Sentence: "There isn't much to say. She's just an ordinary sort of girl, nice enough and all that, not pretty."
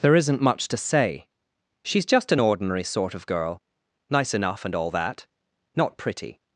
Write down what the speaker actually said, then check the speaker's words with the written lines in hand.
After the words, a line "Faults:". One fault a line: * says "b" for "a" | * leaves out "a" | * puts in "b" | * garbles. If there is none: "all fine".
"There isn't much to say. She's just an ordinary sort of girl, nice enough and all that, not pretty."
Faults:
all fine